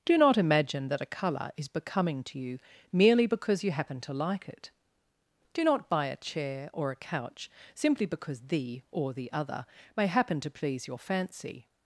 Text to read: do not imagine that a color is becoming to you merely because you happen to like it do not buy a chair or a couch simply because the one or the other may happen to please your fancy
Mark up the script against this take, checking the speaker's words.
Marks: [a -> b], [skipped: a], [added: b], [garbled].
do not imagine that a color is becoming to you merely because you happen to like it do not buy a chair or a couch simply because the [skipped: one] or the other may happen to please your fancy